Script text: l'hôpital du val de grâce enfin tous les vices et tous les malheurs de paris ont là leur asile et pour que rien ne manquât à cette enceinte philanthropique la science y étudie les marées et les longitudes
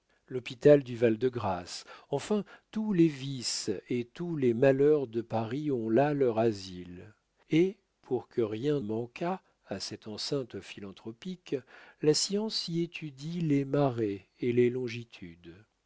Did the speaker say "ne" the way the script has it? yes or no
no